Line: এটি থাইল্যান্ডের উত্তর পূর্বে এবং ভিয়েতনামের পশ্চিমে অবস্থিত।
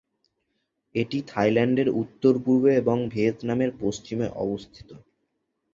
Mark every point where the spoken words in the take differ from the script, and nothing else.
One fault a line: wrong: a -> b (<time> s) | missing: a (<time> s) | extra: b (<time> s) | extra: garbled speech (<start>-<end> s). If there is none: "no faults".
no faults